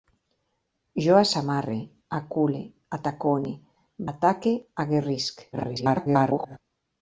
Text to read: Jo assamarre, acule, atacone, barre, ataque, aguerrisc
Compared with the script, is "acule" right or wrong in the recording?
right